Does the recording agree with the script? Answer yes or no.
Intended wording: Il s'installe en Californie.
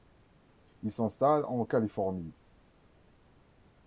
yes